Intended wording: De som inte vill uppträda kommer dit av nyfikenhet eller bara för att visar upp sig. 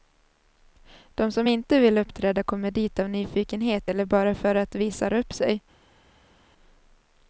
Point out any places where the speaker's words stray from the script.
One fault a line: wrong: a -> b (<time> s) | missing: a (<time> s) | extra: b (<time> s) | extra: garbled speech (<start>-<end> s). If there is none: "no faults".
no faults